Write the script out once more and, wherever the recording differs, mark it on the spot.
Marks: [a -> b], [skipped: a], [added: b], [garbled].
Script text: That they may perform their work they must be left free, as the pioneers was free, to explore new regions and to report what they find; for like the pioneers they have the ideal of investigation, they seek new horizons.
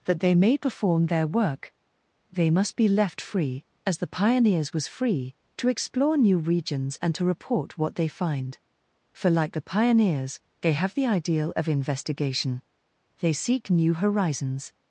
That they may perform their work they must be left free, as the pioneers was free, to explore new regions and to report what they find; for like the pioneers they have the ideal of investigation, they seek new horizons.